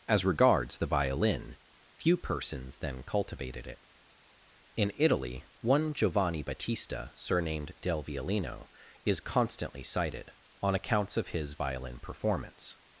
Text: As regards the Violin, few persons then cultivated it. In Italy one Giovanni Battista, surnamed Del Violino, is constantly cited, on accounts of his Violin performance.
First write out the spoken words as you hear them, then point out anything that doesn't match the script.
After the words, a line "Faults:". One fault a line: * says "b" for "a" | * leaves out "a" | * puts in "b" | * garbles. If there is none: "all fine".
As regards the Violin, few persons then cultivated it. In Italy one Giovanni Battista, surnamed Del Violino, is constantly cited, on accounts of his Violin performance.
Faults:
all fine